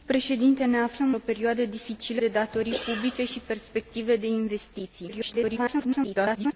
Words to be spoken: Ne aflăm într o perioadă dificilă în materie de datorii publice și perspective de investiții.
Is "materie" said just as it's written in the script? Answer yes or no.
no